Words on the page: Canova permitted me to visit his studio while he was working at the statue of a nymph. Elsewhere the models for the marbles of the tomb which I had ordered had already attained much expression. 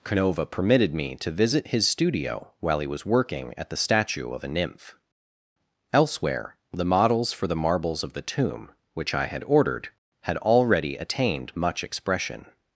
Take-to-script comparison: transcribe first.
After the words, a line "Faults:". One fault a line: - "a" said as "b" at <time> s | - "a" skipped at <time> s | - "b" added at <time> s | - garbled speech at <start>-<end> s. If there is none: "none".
Canova permitted me to visit his studio while he was working at the statue of a nymph. Elsewhere the models for the marbles of the tomb which I had ordered had already attained much expression.
Faults:
none